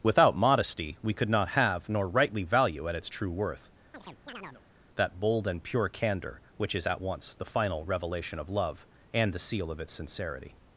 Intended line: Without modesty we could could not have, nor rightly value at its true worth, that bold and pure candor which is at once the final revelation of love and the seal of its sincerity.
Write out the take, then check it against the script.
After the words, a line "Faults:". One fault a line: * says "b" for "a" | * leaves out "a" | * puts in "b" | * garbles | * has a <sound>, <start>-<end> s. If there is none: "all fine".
Without modesty we could not have, nor rightly value at its true worth, that bold and pure candor which is at once the final revelation of love and the seal of its sincerity.
Faults:
* leaves out "could"
* has a chirp, 3.9-4.6 s